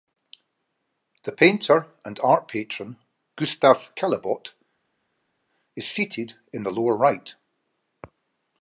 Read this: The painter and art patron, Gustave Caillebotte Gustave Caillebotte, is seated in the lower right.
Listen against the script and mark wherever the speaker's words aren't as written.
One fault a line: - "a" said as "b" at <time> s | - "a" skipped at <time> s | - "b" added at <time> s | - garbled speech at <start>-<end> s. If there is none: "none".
- "Gustave Caillebotte" skipped at 4.5 s